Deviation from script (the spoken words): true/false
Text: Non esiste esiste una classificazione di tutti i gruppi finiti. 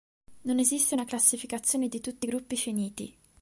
true